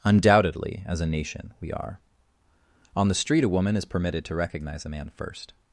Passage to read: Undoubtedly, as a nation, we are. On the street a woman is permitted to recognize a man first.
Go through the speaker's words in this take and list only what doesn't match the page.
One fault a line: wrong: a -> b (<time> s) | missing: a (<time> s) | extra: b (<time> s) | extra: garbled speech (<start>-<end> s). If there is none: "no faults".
no faults